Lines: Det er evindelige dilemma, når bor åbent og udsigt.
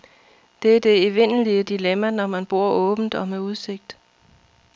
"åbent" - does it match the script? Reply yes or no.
yes